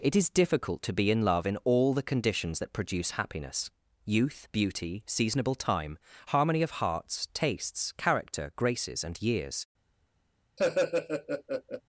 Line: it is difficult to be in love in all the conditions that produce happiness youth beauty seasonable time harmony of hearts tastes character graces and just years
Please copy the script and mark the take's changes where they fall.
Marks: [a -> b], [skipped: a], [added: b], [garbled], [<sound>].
it is difficult to be in love in all the conditions that produce happiness youth beauty seasonable time harmony of hearts tastes character graces and [skipped: just] years [laugh]